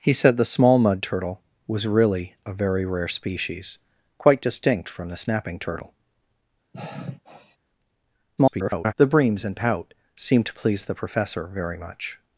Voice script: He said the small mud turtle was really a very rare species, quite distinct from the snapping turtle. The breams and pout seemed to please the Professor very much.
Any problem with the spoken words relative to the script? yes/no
yes